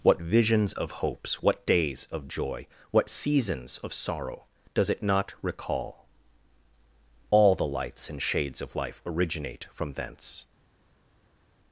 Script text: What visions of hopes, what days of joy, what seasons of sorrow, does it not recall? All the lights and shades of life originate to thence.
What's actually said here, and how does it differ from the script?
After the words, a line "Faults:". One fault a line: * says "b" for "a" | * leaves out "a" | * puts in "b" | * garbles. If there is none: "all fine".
What visions of hopes, what days of joy, what seasons of sorrow, does it not recall? All the lights and shades of life originate from thence.
Faults:
* says "from" for "to"